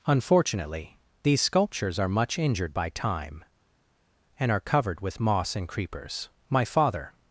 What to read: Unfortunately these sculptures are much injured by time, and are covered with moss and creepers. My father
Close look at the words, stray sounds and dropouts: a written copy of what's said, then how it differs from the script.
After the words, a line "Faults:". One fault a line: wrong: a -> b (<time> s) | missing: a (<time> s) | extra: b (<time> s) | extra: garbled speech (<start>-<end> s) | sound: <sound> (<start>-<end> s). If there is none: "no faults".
Unfortunately these sculptures are much injured by time, and are covered with moss and creepers. My father
Faults:
no faults